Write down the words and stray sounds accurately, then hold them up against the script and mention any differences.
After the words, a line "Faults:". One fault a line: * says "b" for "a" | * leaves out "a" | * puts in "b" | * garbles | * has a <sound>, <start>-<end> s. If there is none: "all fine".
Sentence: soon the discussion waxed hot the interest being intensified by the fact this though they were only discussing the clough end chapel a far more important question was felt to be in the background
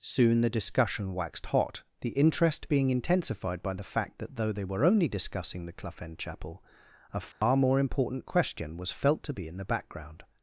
soon the discussion waxed hot the interest being intensified by the fact that though they were only discussing the clough end chapel a far more important question was felt to be in the background
Faults:
* says "that" for "this"
* has a dropout, 7.3-7.4 s